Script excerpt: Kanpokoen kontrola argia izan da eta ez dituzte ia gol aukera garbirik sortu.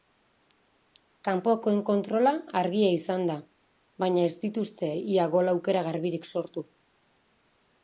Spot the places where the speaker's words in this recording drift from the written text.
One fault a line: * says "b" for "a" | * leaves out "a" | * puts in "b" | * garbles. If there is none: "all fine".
* says "baina" for "eta"